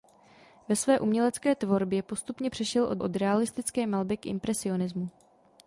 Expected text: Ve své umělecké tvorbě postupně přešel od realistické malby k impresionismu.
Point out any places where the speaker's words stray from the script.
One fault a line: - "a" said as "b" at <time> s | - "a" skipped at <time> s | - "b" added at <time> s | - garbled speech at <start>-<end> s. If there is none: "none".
- "od" added at 3.0 s